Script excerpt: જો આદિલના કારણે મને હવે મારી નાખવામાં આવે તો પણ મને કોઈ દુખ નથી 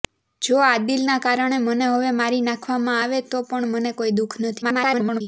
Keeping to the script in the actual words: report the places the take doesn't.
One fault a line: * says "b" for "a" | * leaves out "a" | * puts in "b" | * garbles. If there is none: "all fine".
* garbles